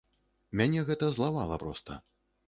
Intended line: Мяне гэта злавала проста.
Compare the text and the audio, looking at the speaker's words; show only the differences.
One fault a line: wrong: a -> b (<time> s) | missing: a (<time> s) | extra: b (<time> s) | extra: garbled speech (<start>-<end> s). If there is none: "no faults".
no faults